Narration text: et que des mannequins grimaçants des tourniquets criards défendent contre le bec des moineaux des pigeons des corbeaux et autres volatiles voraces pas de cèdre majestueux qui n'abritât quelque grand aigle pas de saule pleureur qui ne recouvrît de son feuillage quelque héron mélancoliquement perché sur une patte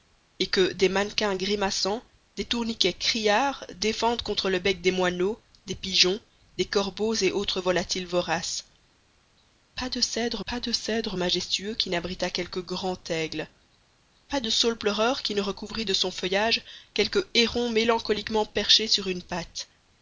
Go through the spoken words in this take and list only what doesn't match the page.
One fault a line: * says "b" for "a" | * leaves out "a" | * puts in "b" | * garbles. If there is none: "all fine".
* puts in "pas de cèdre"